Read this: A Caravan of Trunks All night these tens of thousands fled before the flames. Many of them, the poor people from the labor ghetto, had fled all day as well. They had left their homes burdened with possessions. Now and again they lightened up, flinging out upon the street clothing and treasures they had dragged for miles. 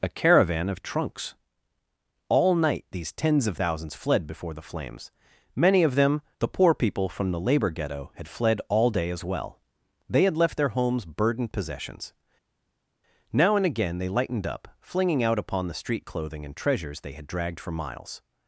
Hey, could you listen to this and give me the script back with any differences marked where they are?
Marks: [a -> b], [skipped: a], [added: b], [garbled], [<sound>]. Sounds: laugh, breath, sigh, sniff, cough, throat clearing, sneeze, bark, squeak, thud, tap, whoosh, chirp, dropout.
A Caravan of Trunks All night these tens of thousands fled before the flames. Many of them, the poor people from the labor ghetto, had fled all day as well. They had left their homes burdened [skipped: with] possessions. Now and again they lightened up, flinging out upon the street clothing and treasures they had dragged for miles.